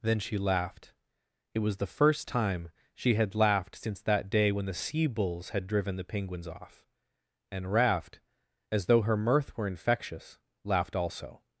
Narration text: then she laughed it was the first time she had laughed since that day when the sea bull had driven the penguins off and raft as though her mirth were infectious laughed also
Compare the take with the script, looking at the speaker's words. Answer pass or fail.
fail